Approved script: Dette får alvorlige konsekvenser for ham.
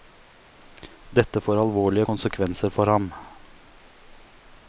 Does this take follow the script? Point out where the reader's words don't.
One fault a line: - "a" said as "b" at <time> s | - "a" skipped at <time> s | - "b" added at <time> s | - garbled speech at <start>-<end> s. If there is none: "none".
none